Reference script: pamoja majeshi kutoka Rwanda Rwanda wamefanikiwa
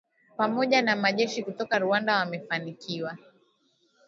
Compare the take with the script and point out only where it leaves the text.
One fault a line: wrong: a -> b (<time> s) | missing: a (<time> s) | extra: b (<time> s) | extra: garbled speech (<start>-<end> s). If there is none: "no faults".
extra: na (0.8 s)
missing: Rwanda (2.1 s)